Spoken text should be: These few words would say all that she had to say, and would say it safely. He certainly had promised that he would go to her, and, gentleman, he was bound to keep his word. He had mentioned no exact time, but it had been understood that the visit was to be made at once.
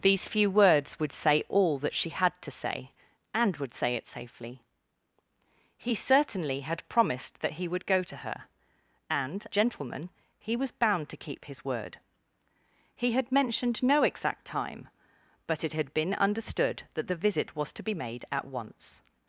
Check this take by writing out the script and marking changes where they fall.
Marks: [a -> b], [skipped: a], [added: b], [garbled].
These few words would say all that she had to say, and would say it safely. He certainly had promised that he would go to her, and, gentleman, he was bound to keep his word. He had mentioned no exact time, but it had been understood that the visit was to be made at once.